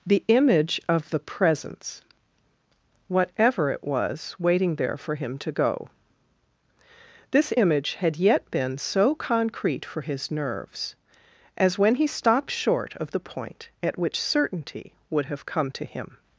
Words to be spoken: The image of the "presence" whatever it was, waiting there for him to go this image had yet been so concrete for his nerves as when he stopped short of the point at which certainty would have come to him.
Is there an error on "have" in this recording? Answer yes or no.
no